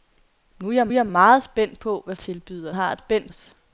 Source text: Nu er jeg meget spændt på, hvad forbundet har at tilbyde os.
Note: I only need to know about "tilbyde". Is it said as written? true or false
false